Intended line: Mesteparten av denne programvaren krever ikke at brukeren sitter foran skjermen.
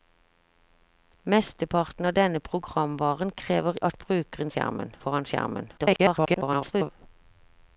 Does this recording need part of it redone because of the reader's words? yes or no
yes